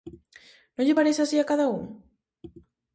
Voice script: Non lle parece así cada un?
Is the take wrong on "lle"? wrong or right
right